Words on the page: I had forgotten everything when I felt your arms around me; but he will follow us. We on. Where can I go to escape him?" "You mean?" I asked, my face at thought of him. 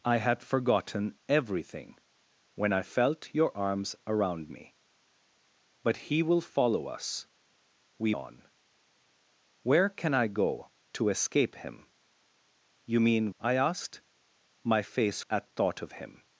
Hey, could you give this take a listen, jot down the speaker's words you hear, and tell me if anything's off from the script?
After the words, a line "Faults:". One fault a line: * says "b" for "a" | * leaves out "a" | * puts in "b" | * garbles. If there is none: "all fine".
I had forgotten everything when I felt your arms around me; but he will follow us. We on. Where can I go to escape him?" "You mean?" I asked, my face at thought of him.
Faults:
all fine